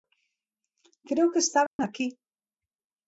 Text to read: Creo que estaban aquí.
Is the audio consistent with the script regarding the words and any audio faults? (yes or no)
no